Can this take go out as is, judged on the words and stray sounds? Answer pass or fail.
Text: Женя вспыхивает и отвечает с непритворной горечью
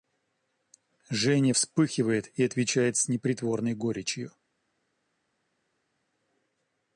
pass